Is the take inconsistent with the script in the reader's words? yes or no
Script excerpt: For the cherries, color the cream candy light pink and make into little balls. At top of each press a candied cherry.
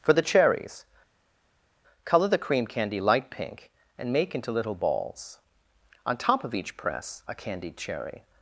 yes